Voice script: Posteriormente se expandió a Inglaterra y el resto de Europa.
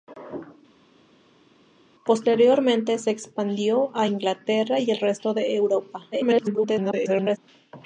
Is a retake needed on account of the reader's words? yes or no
yes